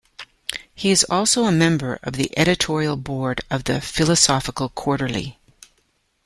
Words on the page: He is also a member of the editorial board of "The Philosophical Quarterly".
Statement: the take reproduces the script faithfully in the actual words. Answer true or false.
true